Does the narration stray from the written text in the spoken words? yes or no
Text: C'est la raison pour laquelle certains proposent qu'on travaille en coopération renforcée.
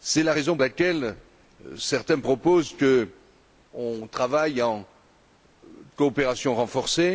yes